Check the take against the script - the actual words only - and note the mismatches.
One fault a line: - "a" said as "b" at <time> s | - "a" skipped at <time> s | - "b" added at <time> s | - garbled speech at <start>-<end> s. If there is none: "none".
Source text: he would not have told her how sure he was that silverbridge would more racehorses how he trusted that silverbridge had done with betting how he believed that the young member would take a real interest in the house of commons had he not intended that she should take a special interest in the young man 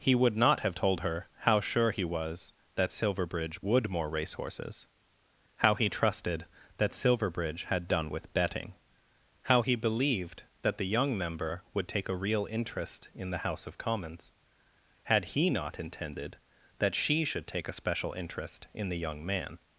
none